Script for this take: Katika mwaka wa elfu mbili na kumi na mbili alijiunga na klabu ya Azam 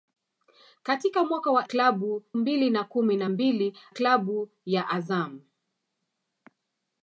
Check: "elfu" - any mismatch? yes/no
yes